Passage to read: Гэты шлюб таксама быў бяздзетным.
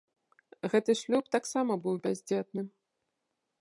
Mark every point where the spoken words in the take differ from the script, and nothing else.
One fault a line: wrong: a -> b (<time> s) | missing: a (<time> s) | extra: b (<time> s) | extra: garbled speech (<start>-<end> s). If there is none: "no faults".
no faults